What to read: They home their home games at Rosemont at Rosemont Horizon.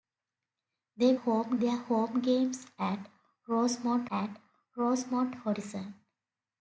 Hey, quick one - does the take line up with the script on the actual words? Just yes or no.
yes